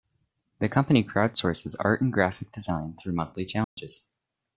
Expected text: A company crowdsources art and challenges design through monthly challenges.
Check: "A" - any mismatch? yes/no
yes